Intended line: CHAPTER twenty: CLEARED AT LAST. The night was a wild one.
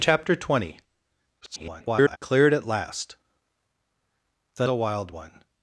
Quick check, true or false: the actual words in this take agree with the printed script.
false